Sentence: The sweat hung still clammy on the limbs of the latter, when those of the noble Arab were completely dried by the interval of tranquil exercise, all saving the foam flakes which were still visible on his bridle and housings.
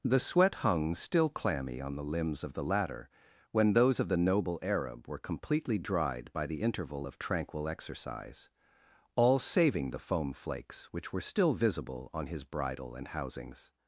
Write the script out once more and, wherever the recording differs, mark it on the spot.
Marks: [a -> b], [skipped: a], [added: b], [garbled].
The sweat hung still clammy on the limbs of the latter, when those of the noble Arab were completely dried by the interval of tranquil exercise, all saving the foam flakes which were still visible on his bridle and housings.